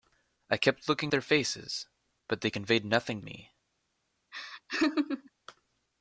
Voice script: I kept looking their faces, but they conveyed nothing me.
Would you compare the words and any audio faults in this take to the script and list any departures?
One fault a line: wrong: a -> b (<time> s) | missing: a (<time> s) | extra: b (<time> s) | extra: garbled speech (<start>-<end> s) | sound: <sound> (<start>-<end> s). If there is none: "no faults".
sound: laugh (4.3-5.3 s)